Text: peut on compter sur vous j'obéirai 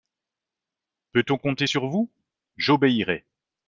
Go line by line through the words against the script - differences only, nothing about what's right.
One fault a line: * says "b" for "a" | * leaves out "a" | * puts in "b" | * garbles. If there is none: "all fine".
all fine